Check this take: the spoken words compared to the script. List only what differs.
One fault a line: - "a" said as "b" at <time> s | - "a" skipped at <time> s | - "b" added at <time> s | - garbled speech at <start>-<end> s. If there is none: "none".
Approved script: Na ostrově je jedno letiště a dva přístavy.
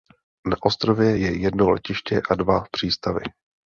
none